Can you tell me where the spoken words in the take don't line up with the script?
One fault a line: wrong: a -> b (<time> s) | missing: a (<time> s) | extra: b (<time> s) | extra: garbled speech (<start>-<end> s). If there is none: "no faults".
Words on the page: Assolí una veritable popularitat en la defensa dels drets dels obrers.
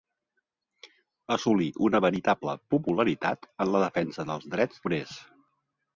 missing: dels (4.8 s)